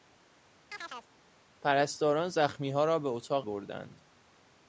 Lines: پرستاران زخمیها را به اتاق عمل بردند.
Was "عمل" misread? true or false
true